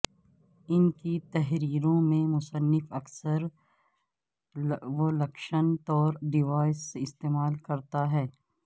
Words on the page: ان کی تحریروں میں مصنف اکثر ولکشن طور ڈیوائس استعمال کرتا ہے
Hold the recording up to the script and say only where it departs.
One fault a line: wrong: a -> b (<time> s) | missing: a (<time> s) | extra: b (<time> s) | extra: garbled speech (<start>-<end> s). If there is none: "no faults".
no faults